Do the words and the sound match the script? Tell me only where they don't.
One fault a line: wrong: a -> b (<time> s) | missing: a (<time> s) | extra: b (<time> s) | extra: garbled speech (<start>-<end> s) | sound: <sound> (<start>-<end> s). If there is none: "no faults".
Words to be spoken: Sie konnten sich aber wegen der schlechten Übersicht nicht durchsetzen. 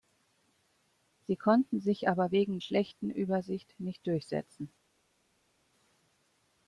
missing: der (2.6 s)